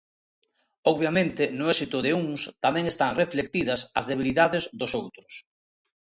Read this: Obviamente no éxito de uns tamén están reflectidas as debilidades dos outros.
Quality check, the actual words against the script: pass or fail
pass